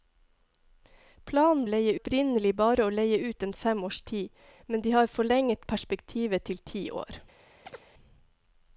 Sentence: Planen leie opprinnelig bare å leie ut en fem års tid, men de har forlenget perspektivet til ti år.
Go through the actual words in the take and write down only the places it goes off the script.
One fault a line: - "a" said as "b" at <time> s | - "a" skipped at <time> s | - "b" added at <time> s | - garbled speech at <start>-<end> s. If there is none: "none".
none